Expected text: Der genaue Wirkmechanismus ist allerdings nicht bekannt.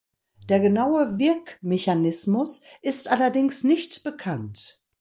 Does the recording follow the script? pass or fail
pass